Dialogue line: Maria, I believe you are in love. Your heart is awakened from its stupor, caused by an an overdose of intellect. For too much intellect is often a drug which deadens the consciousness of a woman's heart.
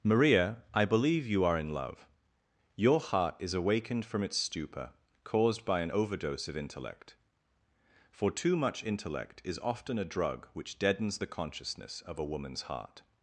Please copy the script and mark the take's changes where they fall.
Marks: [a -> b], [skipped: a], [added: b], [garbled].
Maria, I believe you are in love. Your heart is awakened from its stupor, caused by an [skipped: an] overdose of intellect. For too much intellect is often a drug which deadens the consciousness of a woman's heart.